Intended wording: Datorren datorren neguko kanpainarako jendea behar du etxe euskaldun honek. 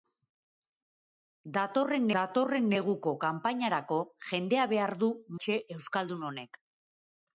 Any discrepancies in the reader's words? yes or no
no